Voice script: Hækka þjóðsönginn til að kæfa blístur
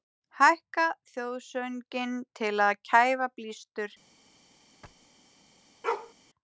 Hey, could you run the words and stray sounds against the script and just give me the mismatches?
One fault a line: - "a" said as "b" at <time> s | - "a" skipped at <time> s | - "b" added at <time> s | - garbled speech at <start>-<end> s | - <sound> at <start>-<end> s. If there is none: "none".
- thud at 4.8-5.1 s
- bark at 5.8-6.1 s